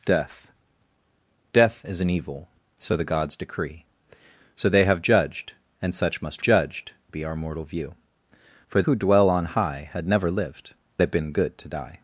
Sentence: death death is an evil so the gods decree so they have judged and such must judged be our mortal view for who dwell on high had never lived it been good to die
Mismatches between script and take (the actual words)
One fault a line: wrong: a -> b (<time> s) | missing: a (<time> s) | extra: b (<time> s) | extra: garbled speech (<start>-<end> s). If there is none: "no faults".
no faults